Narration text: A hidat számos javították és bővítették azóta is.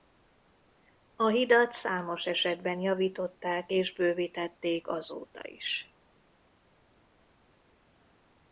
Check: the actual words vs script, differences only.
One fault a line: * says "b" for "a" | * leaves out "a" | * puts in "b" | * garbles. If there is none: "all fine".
* puts in "esetben"